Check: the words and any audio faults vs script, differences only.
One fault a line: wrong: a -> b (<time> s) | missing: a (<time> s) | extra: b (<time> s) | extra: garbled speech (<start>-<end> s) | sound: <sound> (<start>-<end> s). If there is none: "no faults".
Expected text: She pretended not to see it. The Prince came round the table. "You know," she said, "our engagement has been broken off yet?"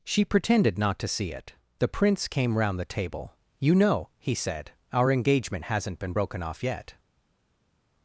wrong: she -> he (4.2 s)
wrong: has -> hasn't (5.7 s)